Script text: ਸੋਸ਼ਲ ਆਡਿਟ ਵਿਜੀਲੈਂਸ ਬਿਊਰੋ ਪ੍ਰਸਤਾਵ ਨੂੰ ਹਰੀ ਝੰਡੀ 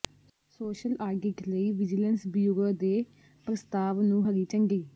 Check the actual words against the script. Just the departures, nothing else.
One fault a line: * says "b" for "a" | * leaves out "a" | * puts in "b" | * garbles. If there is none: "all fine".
* puts in "ਲਈ"
* puts in "ਦੇ"